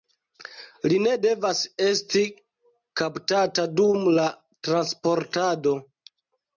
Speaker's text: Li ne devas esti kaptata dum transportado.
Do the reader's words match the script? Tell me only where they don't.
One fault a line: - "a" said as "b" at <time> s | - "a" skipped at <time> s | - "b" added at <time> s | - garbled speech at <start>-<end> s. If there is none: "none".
- "la" added at 4.2 s